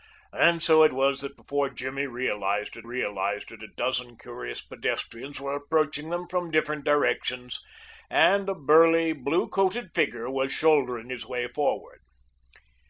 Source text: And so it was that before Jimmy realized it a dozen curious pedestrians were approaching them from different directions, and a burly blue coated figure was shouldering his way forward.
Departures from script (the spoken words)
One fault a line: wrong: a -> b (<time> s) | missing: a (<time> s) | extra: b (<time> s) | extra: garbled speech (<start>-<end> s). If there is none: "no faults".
extra: realized it (2.8 s)